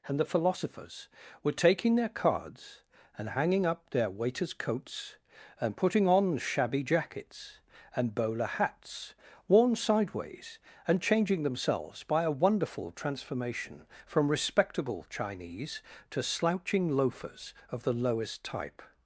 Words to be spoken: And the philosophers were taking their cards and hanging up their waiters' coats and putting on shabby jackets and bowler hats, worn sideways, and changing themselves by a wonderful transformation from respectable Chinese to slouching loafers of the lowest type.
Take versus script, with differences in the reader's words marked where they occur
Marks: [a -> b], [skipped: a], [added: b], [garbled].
And the philosophers were taking their cards and hanging up their waiters' coats and putting on shabby jackets and bowler hats, worn sideways, and changing themselves by a wonderful transformation from respectable Chinese to slouching loafers of the lowest type.